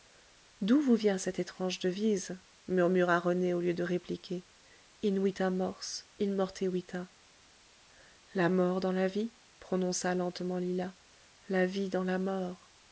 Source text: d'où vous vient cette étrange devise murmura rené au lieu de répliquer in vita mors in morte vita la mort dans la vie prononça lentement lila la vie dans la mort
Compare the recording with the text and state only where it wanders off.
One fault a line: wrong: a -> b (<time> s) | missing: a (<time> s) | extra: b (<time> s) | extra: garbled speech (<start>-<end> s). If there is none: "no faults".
no faults